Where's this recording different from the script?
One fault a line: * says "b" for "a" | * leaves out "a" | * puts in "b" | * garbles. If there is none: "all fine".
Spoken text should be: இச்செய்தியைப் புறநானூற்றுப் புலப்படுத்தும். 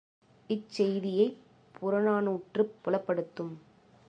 all fine